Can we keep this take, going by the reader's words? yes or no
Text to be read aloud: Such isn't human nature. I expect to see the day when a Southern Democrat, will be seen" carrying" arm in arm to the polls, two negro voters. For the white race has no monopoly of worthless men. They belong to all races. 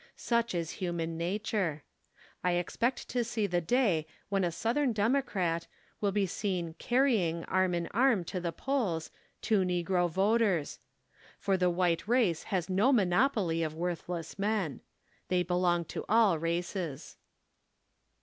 no